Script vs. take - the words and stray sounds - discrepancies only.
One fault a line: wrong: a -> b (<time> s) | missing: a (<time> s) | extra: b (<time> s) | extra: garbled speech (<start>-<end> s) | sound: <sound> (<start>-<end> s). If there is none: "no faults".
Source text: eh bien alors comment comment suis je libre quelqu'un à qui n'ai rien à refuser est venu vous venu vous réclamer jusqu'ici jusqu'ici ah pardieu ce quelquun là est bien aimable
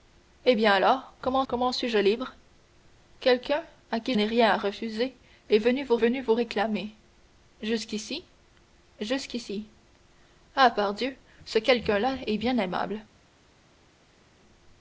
no faults